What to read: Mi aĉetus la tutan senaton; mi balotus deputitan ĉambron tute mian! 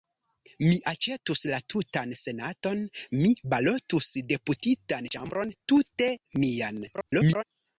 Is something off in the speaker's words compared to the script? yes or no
yes